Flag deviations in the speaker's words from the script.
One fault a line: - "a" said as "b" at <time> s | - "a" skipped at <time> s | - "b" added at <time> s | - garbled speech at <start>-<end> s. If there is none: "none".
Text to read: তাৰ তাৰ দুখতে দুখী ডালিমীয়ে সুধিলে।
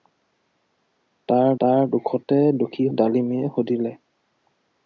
none